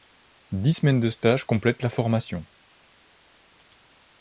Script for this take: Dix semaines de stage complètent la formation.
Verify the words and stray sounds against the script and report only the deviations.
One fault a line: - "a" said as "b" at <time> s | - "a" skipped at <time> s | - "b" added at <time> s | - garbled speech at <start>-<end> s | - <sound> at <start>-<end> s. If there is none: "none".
none